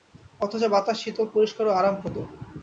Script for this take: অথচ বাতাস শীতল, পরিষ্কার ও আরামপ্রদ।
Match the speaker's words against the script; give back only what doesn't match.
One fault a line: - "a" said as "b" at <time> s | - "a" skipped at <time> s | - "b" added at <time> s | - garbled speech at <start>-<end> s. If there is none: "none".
none